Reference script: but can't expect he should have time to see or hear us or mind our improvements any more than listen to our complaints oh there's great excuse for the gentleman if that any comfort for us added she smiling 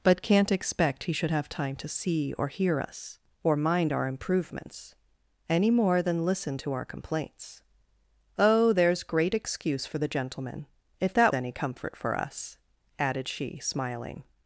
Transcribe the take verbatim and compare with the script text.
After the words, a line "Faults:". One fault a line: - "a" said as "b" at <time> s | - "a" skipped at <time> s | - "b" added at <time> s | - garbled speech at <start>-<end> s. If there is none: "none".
but can't expect he should have time to see or hear us or mind our improvements any more than listen to our complaints oh there's great excuse for the gentleman if that any comfort for us added she smiling
Faults:
none